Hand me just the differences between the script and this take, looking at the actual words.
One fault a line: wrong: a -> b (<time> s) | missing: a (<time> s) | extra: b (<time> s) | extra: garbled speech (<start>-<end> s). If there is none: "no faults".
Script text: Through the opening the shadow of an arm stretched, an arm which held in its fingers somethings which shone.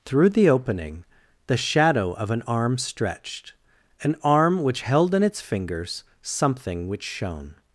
wrong: somethings -> something (6.2 s)